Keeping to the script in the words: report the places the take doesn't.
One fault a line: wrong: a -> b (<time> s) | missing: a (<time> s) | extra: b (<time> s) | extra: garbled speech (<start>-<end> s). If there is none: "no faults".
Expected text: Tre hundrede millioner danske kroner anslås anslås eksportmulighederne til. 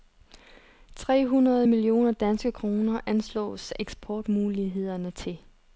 missing: anslås (3.7 s)